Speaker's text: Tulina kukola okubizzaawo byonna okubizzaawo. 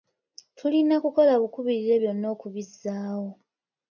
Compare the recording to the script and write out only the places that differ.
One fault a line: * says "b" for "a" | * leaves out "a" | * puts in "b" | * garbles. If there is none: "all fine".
* says "bukubirire" for "okubizzaawo"